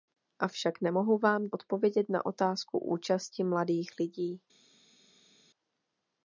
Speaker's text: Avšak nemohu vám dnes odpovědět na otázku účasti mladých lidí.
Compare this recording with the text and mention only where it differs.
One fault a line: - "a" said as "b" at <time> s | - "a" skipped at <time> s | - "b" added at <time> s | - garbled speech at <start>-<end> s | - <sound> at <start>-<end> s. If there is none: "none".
- "dnes" skipped at 1.4 s